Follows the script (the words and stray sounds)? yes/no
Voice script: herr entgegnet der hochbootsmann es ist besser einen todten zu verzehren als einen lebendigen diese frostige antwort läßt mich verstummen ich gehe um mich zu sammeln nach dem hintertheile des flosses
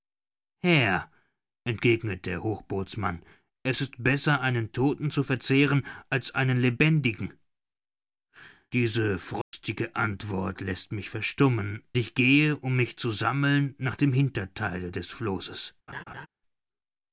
no